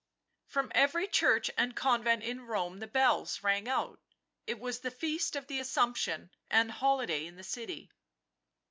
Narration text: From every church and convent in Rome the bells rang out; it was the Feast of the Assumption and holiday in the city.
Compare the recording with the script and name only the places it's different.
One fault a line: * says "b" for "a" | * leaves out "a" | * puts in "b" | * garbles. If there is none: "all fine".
all fine